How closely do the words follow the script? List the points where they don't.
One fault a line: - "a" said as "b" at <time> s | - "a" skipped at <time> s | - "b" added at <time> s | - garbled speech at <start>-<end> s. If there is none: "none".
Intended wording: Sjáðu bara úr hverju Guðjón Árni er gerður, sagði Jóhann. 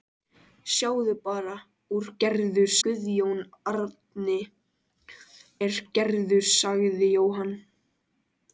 - "hverju" said as "gerður" at 2.2 s